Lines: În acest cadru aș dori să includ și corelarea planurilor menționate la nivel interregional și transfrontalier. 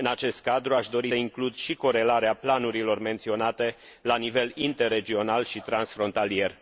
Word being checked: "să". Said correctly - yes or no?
no